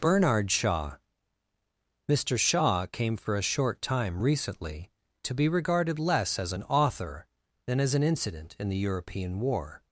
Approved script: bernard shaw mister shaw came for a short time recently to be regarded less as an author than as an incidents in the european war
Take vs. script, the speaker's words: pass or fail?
fail